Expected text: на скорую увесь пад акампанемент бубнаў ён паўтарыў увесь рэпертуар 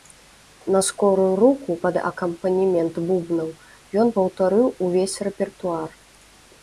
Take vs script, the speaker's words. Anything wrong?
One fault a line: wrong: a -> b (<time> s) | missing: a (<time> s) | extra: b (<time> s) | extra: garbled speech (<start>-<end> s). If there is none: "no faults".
wrong: увесь -> руку (1.4 s)